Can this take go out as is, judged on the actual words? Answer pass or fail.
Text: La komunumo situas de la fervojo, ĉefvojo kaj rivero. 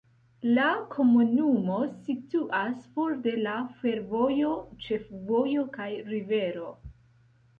fail